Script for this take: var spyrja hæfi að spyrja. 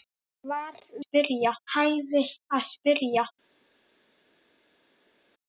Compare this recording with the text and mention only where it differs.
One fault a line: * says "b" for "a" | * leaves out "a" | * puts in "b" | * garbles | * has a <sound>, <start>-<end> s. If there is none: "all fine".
all fine